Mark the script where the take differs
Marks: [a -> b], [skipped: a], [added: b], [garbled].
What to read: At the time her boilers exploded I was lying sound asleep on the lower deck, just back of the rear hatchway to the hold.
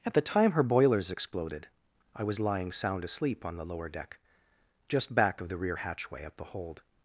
At the time her boilers exploded I was lying sound asleep on the lower deck, just back of the rear hatchway [to -> at] the hold.